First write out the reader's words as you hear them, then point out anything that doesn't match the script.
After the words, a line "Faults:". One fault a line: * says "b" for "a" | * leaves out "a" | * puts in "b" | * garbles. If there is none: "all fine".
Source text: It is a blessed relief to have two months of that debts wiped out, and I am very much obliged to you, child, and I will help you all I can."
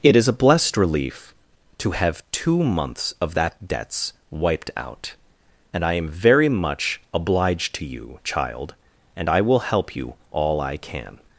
It is a blessed relief to have two months of that debts wiped out, and I am very much obliged to you, child, and I will help you all I can."
Faults:
all fine